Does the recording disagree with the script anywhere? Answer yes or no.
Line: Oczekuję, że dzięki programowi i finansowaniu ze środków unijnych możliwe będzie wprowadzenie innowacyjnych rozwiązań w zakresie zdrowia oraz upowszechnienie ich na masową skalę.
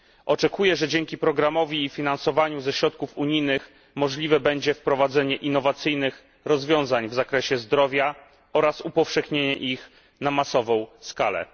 no